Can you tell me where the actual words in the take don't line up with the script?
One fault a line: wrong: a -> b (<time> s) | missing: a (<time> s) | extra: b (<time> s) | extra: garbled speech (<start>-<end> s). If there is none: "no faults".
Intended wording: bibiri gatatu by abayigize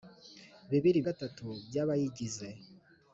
no faults